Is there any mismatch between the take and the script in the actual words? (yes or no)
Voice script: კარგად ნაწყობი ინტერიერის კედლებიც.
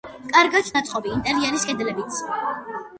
no